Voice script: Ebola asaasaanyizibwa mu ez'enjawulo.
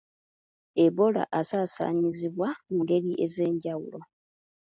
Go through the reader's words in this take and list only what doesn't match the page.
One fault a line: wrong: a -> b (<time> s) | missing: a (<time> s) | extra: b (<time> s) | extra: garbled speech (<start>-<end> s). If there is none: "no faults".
extra: ngeri (2.8 s)